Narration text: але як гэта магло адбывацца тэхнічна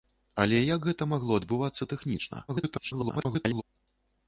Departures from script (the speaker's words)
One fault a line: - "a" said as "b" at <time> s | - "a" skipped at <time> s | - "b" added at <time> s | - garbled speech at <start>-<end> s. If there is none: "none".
- garbled speech at 2.5-3.6 s